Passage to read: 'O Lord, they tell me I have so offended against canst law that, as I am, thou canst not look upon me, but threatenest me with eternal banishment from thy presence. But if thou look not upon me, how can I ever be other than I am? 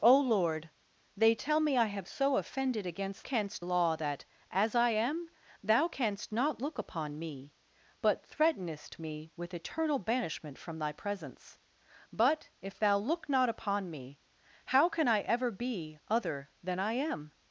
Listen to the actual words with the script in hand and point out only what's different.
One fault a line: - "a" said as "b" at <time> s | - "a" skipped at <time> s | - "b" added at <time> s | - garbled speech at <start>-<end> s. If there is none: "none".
none